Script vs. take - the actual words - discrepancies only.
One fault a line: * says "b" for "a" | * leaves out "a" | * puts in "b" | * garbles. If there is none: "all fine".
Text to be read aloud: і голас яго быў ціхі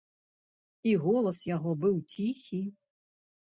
all fine